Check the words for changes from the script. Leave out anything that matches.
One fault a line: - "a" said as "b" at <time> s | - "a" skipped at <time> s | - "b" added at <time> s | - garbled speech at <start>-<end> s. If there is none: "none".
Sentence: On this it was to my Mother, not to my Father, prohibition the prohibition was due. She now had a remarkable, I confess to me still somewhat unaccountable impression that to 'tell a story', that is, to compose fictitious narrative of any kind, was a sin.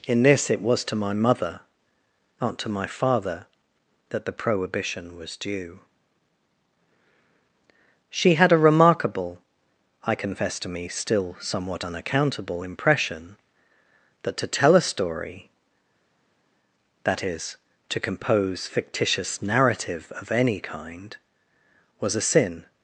- "On" said as "In" at 0.1 s
- "prohibition" said as "that" at 4.1 s
- "now" skipped at 8.3 s